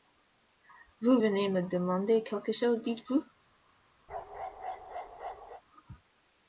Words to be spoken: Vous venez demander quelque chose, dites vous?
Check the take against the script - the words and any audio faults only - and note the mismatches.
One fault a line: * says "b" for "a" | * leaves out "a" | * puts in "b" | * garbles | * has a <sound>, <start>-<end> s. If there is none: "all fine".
* puts in "me"
* has a bark, 4.1-5.6 s